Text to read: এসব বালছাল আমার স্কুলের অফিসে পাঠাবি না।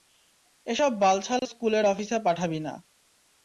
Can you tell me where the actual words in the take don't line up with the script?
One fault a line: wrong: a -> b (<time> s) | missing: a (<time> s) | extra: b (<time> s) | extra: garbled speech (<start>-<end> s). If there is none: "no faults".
missing: আমার (1.4 s)